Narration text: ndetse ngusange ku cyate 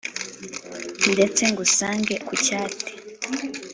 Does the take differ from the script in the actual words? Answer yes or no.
no